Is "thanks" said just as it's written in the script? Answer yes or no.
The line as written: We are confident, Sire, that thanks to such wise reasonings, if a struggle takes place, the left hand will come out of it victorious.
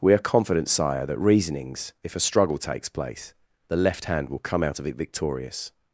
no